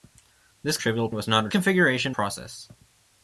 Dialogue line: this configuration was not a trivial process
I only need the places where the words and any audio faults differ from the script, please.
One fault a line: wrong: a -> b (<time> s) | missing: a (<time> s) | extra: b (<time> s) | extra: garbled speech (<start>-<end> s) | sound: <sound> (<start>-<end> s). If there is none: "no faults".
wrong: configuration -> trivial (0.8 s)
wrong: trivial -> configuration (1.5 s)